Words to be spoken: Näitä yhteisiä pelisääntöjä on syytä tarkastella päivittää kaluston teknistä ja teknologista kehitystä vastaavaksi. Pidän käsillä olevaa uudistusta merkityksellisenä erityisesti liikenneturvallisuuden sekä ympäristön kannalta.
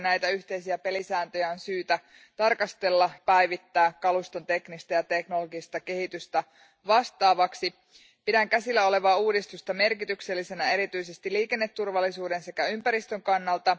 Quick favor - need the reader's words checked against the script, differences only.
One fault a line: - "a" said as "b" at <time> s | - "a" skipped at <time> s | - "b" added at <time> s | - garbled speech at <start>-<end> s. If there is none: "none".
none